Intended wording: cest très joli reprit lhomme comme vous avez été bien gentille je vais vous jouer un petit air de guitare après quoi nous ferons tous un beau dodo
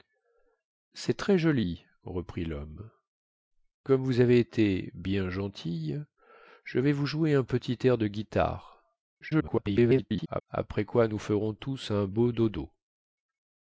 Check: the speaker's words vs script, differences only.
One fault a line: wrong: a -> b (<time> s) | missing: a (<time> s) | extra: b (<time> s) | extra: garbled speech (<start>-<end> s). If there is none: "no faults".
extra: garbled speech (9.2-10.4 s)